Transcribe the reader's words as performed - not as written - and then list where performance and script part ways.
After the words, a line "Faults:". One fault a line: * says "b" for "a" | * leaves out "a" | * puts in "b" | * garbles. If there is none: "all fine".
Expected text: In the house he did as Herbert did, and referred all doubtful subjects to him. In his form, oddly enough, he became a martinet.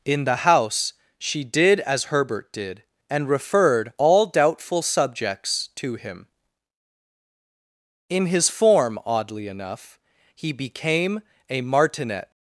In the house she did as Herbert did, and referred all doubtful subjects to him. In his form, oddly enough, he became a martinet.
Faults:
* says "she" for "he"